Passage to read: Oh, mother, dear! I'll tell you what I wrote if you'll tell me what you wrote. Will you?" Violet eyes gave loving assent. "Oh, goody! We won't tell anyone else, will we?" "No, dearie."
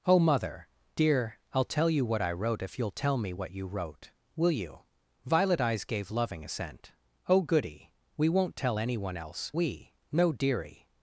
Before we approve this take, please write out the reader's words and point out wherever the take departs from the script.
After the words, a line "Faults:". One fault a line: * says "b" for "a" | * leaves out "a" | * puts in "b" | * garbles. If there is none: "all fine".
Oh, mother, dear! I'll tell you what I wrote if you'll tell me what you wrote. Will you?" Violet eyes gave loving assent. "Oh, goody! We won't tell anyone else, we?" "No, dearie."
Faults:
* leaves out "will"